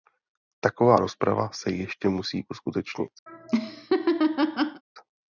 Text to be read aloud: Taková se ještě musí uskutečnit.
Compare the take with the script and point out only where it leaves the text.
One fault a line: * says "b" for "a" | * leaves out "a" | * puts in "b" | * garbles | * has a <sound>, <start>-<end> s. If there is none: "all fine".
* puts in "rozprava"
* has a laugh, 3.3-4.8 s